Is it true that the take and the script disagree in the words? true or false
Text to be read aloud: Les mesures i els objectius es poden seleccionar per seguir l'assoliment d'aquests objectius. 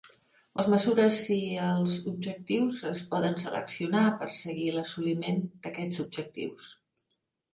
false